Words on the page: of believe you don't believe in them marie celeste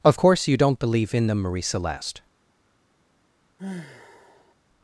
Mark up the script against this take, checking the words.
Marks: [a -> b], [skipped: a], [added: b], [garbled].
of [believe -> course] you don't believe in them marie celeste